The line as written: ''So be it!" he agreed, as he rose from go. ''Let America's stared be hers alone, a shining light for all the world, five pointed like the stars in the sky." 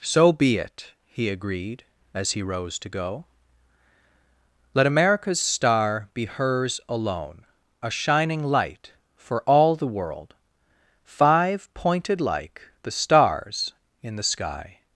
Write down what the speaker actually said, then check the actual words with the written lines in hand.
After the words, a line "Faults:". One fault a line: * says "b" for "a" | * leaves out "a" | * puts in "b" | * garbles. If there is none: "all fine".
''So be it!" he agreed, as he rose to go. ''Let America's star be hers alone, a shining light for all the world, five pointed like the stars in the sky."
Faults:
* says "to" for "from"
* says "star" for "stared"